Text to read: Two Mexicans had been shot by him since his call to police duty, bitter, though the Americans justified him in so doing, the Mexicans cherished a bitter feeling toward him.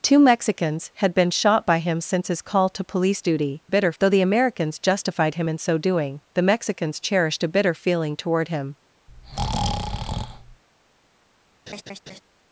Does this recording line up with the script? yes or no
yes